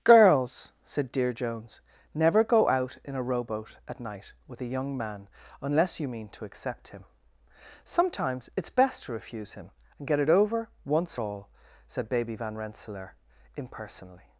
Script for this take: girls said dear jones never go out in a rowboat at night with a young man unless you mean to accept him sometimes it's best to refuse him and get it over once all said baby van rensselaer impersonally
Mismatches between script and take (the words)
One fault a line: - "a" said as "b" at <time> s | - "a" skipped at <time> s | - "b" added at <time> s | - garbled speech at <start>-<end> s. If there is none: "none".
none